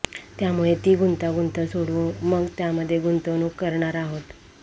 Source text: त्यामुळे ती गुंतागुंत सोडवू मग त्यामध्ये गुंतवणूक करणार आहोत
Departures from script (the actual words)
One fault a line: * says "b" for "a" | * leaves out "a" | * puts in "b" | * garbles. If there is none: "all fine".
all fine